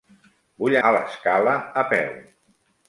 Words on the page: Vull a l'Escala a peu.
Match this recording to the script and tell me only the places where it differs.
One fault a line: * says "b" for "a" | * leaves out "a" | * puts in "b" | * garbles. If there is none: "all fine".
all fine